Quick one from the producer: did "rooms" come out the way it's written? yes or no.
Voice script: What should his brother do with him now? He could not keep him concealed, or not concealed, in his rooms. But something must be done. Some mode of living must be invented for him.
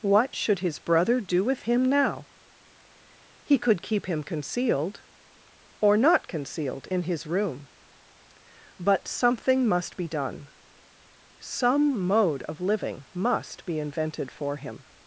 no